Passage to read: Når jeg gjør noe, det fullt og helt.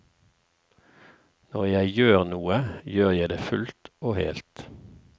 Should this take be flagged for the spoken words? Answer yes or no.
yes